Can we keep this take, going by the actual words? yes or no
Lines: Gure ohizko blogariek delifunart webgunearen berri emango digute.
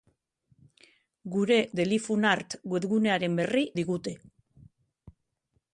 no